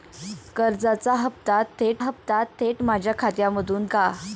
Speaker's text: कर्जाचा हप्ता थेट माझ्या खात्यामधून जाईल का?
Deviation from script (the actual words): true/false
true